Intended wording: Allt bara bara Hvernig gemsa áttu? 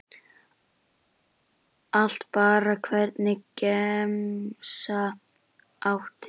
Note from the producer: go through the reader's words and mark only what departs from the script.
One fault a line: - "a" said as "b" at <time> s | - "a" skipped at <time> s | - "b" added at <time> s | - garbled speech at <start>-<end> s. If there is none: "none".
- "bara" skipped at 2.8 s